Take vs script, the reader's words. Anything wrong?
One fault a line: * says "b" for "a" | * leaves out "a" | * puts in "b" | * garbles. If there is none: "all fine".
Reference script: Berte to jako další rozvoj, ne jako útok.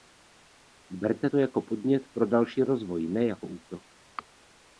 * puts in "podnět pro"